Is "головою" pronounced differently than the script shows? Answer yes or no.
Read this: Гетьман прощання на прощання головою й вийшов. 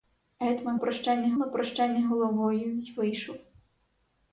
no